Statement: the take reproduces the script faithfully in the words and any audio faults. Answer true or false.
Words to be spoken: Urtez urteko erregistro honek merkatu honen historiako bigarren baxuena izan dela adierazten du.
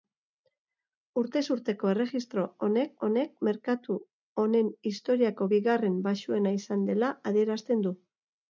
false